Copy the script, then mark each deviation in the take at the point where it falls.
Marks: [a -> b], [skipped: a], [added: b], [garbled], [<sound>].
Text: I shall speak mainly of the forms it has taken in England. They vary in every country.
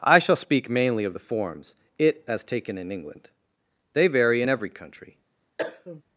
I shall speak mainly of the forms it [has -> as] taken in England. They vary in every country. [cough]